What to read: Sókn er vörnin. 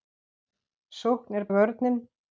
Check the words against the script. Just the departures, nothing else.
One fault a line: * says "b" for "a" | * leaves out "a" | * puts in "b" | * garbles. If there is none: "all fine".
all fine